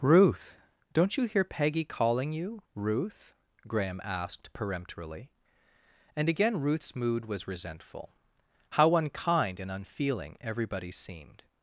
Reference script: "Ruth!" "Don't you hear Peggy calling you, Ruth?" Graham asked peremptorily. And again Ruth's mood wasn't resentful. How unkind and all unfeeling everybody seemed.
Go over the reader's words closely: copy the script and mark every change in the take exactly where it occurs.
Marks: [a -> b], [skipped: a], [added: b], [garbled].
"Ruth!" "Don't you hear Peggy calling you, Ruth?" Graham asked peremptorily. And again Ruth's mood [wasn't -> was] resentful. How unkind and [skipped: all] unfeeling everybody seemed.